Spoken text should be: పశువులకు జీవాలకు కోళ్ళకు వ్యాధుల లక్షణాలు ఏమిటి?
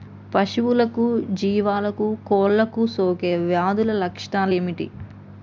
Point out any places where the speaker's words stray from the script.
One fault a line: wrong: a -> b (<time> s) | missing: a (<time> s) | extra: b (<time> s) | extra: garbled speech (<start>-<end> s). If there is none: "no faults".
extra: సోకే (3.0 s)